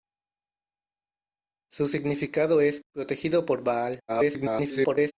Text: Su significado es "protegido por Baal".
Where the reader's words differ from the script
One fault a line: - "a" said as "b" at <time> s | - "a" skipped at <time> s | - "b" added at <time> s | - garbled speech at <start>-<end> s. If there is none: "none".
- garbled speech at 4.1-5.1 s